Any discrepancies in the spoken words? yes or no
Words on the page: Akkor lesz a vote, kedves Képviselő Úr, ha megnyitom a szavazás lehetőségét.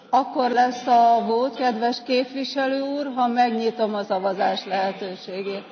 no